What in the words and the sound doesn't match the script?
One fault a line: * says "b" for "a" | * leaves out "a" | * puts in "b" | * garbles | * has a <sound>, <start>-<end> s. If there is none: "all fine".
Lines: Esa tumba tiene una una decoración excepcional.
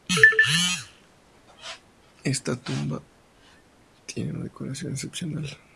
* says "Esta" for "Esa"
* leaves out "una"